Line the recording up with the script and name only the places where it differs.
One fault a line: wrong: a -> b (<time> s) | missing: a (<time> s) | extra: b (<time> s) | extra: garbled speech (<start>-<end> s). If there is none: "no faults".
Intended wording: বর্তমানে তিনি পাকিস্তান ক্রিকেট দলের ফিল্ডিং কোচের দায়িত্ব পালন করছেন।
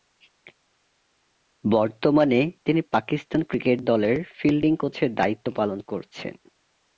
no faults